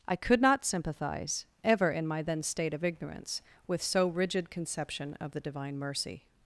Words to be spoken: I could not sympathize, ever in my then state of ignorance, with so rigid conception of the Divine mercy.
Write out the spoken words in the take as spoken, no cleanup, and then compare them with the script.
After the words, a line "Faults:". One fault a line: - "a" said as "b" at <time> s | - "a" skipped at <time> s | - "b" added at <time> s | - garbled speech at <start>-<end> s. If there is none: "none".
I could not sympathize, ever in my then state of ignorance, with so rigid conception of the Divine mercy.
Faults:
none